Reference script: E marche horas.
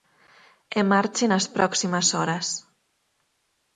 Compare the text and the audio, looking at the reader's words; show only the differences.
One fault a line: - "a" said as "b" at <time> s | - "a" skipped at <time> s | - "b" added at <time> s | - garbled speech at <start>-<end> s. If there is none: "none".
- "nas próximas" added at 1.3 s